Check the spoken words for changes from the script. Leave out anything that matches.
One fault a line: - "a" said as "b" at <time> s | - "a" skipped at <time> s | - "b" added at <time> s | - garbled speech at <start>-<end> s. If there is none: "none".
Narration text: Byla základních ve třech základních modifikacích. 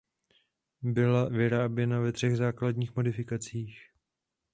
- "základních" said as "vyráběna" at 1.2 s